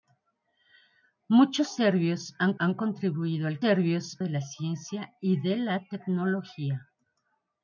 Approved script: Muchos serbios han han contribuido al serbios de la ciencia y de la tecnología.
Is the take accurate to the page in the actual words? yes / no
yes